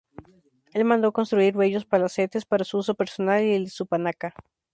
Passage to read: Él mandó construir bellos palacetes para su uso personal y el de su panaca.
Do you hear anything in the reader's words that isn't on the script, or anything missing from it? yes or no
no